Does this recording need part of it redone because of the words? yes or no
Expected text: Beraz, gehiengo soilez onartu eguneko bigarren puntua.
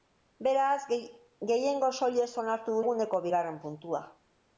no